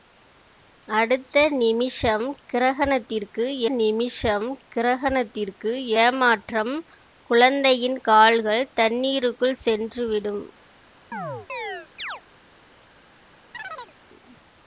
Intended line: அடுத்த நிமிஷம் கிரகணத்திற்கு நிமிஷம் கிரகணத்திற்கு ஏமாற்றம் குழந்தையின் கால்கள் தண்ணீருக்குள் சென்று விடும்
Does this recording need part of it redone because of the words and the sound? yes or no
yes